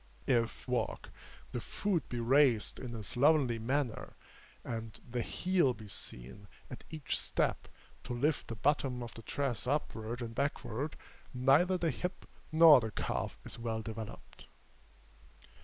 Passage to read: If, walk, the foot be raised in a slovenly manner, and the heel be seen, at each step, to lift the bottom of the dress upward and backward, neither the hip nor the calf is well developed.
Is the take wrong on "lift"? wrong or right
right